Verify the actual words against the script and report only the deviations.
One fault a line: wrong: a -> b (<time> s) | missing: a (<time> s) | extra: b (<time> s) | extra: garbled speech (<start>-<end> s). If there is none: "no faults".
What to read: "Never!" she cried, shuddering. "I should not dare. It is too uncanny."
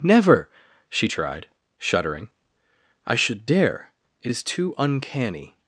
wrong: cried -> tried (1.0 s)
missing: not (3.5 s)